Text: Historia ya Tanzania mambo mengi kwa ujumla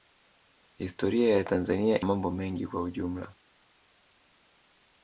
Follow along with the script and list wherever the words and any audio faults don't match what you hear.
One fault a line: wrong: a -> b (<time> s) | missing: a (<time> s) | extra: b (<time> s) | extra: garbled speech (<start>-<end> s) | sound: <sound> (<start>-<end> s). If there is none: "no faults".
no faults